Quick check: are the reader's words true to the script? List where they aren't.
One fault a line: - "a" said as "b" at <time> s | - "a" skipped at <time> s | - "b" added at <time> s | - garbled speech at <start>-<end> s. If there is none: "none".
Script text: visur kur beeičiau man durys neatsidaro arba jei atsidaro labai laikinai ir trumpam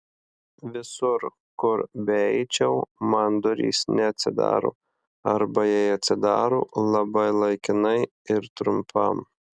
none